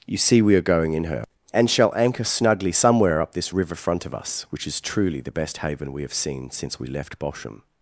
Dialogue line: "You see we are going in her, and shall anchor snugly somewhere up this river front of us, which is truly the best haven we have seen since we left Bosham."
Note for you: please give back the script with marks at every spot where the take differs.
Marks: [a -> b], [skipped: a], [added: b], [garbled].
"You see we are going in her, and shall anchor snugly somewhere up this river front of us, which is truly the best haven we have seen since we left Bosham."